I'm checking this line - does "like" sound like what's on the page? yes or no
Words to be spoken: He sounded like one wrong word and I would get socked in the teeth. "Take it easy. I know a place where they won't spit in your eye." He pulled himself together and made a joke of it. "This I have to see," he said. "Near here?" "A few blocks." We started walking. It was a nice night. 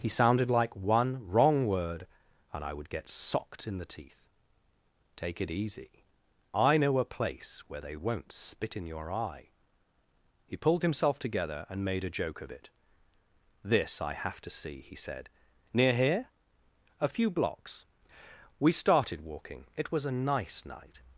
yes